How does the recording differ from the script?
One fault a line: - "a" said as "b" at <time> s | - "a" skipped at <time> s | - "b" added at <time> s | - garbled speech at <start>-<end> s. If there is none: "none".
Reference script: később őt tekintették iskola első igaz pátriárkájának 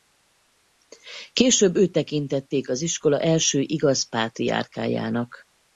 - "az" added at 2.7 s